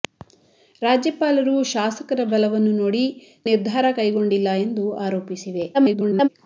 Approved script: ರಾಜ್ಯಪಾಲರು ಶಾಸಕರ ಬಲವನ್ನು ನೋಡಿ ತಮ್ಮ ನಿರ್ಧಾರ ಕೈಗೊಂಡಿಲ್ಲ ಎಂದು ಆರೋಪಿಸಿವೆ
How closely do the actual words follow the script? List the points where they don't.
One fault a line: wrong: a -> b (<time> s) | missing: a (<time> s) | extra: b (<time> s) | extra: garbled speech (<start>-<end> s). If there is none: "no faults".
missing: ತಮ್ಮ (3.0 s)
extra: garbled speech (5.7-6.3 s)